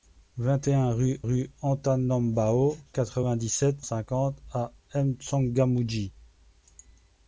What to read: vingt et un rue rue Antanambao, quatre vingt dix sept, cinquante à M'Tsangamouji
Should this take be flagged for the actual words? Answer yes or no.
no